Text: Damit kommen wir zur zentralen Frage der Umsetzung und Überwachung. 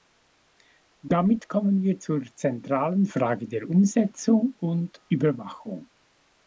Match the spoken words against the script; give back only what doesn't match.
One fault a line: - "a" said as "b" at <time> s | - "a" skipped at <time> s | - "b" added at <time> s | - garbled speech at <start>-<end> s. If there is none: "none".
none